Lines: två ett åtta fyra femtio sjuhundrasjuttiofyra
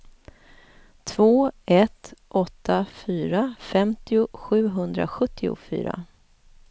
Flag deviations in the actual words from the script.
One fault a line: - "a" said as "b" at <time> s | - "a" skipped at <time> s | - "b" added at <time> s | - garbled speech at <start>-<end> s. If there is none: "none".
none